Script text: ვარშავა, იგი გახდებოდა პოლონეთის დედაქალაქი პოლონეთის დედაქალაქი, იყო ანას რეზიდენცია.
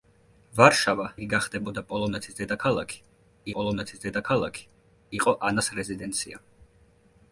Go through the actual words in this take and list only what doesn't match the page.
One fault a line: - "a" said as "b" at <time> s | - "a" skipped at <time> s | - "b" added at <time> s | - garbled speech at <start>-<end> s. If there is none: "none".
none